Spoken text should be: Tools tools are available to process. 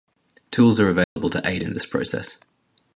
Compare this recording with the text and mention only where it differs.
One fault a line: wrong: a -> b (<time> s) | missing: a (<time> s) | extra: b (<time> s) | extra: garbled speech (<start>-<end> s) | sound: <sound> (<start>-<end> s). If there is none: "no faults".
missing: tools (0.8 s)
sound: dropout (1.0-1.2 s)
extra: aid in this (1.5 s)